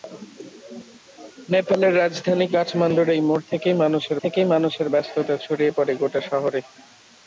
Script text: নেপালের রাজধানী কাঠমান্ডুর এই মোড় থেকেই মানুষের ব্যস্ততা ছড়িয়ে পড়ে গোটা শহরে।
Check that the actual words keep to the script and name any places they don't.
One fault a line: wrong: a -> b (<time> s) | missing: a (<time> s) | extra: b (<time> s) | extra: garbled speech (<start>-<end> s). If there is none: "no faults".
extra: থেকেই মানুষের (4.2 s)